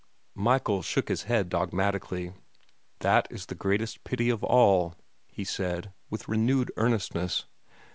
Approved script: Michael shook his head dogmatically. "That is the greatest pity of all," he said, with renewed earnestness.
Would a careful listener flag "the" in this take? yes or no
no